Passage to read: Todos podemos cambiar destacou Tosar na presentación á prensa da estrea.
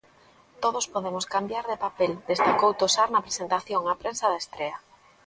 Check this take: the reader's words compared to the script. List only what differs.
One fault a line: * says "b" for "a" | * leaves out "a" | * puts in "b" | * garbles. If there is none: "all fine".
* puts in "de papel"